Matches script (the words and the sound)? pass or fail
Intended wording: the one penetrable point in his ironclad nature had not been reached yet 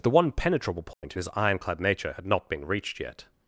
fail